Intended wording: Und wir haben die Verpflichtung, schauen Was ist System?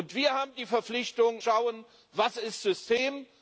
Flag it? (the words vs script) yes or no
no